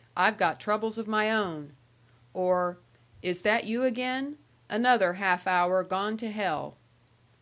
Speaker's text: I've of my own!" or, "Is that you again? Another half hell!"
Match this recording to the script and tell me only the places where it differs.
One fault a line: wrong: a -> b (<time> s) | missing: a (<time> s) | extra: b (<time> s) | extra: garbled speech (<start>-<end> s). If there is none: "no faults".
extra: got troubles (0.4 s)
extra: hour gone to (5.5 s)